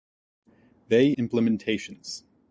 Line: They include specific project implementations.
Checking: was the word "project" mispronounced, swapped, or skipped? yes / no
yes